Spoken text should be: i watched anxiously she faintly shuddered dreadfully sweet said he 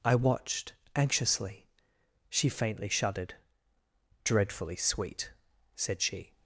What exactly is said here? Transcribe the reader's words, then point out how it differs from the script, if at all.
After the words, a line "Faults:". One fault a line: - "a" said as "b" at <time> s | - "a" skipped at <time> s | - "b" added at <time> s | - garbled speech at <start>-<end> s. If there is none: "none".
i watched anxiously she faintly shuddered dreadfully sweet said she
Faults:
- "he" said as "she" at 6.0 s